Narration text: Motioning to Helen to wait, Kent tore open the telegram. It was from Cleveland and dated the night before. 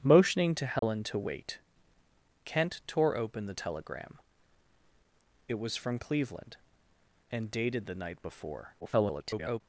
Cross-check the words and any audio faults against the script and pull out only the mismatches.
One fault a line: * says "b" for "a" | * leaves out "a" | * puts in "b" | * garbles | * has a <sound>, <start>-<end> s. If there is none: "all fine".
* has a dropout, 0.8-0.8 s
* garbles